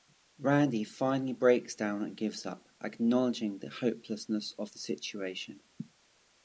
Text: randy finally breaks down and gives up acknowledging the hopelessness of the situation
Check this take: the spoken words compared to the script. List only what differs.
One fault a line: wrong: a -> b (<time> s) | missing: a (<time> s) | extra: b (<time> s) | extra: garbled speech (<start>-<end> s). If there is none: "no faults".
no faults